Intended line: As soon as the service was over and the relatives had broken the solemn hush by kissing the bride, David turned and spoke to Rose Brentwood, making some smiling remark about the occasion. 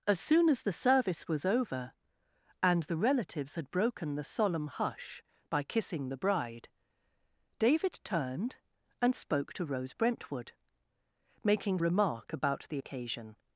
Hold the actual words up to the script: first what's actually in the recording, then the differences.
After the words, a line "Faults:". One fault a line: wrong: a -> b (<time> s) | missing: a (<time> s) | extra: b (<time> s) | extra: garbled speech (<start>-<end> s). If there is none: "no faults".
As soon as the service was over and the relatives had broken the solemn hush by kissing the bride, David turned and spoke to Rose Brentwood, making remark about the occasion.
Faults:
missing: some smiling (11.8 s)